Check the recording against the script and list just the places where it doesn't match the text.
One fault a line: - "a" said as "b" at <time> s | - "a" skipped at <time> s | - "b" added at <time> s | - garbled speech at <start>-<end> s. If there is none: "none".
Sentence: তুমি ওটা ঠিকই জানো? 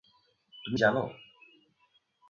- "ওটা ঠিকই" skipped at 0.8 s